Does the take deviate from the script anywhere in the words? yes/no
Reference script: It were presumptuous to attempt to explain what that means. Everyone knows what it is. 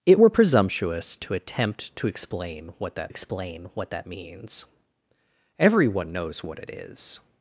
yes